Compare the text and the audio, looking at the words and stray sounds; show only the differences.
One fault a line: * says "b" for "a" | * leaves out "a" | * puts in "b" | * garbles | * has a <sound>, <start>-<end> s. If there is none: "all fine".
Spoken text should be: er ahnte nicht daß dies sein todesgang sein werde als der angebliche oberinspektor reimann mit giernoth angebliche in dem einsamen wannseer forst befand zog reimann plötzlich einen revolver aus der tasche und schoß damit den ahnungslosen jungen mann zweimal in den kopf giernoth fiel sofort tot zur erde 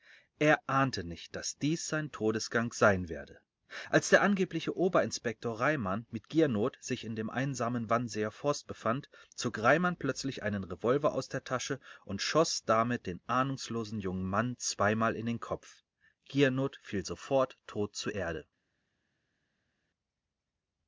* says "sich" for "angebliche"